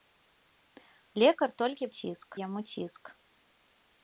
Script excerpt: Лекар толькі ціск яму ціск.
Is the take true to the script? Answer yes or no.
yes